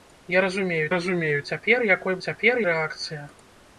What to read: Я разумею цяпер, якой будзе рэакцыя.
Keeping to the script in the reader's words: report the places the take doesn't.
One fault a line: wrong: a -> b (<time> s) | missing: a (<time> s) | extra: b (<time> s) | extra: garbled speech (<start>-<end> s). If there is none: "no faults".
extra: разумею (0.9 s)
wrong: будзе -> цяпер (2.3 s)